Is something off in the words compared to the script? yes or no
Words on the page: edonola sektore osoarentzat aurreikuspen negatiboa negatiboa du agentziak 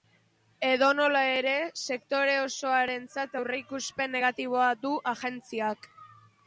yes